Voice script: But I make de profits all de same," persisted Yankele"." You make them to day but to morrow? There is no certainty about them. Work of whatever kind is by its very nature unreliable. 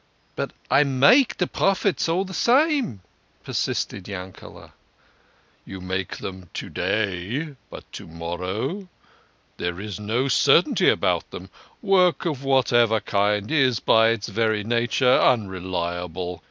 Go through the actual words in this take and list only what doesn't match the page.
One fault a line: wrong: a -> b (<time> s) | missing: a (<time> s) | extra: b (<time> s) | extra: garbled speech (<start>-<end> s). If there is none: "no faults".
no faults